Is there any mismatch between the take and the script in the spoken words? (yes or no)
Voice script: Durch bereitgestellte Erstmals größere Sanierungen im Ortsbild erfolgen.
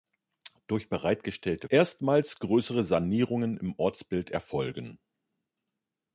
no